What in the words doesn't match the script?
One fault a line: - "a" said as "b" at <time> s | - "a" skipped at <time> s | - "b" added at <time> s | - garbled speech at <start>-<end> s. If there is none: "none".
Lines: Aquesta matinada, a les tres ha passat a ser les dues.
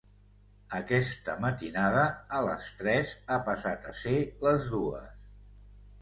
none